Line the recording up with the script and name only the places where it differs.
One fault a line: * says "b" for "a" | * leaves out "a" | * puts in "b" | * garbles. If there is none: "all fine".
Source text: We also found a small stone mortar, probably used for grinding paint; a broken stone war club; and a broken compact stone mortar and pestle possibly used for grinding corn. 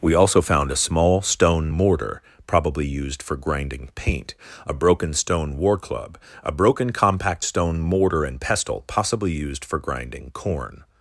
* leaves out "and"